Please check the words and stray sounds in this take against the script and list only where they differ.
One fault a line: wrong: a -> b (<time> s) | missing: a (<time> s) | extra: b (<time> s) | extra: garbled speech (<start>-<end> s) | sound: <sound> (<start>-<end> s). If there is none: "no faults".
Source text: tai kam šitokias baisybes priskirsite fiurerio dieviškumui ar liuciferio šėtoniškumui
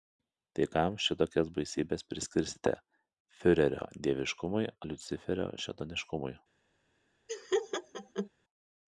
missing: ar (4.7 s)
sound: laugh (7.3-8.3 s)